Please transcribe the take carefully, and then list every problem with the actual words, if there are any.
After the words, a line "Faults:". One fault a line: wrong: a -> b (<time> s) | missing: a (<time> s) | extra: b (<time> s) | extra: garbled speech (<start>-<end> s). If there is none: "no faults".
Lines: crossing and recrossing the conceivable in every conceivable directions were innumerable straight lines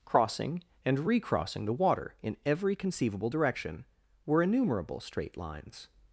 crossing and recrossing the water in every conceivable direction were innumerable straight lines
Faults:
wrong: conceivable -> water (1.7 s)
wrong: directions -> direction (3.3 s)